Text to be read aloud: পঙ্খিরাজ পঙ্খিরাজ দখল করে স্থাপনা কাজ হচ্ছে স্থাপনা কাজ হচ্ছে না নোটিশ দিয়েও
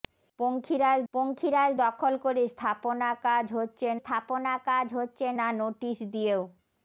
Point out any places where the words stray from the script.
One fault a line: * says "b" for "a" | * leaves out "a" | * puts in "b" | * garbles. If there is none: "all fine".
all fine